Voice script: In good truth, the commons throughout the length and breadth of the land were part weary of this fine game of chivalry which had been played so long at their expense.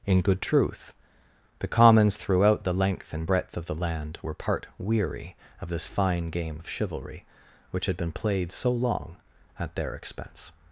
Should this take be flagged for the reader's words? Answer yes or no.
no